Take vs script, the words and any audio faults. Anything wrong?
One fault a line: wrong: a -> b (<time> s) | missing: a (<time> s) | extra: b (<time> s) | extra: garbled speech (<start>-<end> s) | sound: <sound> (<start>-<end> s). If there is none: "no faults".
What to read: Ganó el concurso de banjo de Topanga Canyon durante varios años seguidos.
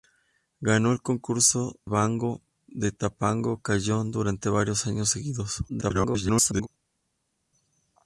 missing: de (1.8 s)
extra: garbled speech (5.7-6.7 s)